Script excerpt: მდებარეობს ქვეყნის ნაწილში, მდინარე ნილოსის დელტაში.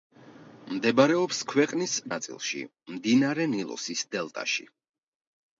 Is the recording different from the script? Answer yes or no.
no